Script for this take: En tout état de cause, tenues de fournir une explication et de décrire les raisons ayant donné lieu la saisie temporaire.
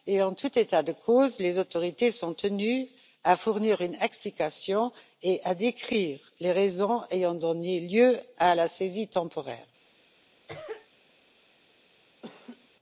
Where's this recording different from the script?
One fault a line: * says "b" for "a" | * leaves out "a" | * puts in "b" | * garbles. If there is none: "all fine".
* puts in "les autorités sont"
* puts in "à"